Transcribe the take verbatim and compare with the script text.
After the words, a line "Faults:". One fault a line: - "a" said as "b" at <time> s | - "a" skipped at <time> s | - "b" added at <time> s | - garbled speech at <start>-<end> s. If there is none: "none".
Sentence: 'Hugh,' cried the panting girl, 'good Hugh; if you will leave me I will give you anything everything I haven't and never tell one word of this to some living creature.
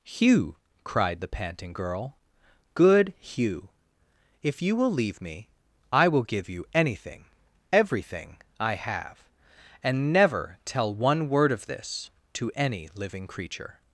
'Hugh,' cried the panting girl, 'good Hugh; if you will leave me I will give you anything everything I have and never tell one word of this to any living creature.
Faults:
- "haven't" said as "have" at 8.8 s
- "some" said as "any" at 12.6 s